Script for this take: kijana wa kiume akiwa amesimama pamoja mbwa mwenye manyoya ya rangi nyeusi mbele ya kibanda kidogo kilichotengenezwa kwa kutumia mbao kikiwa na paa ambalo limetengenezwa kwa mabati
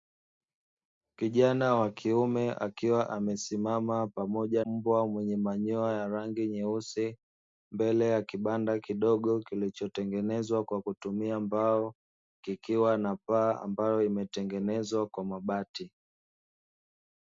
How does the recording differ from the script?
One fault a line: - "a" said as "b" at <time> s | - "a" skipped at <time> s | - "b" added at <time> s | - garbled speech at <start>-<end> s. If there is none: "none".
none